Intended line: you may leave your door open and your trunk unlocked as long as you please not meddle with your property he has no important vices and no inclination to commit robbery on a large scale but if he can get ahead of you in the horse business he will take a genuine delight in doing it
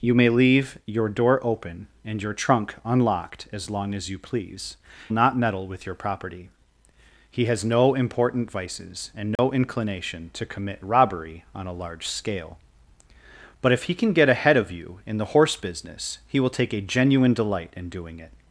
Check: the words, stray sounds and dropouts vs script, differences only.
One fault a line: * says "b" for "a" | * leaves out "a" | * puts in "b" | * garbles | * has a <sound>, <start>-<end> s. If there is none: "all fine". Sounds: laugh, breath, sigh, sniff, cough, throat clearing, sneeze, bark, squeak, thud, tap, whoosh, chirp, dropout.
* has a dropout, 9.4-9.4 s